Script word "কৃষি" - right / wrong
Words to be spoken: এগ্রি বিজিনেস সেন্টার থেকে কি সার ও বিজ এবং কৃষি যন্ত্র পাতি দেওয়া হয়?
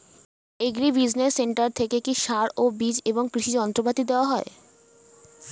right